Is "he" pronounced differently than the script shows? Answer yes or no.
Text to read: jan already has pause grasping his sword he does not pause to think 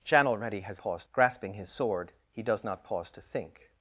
no